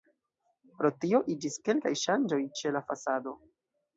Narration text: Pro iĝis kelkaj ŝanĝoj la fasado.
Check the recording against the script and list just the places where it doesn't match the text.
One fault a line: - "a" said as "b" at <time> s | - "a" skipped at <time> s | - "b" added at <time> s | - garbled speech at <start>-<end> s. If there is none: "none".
- "tio" added at 1.0 s
- "ĉe" added at 2.6 s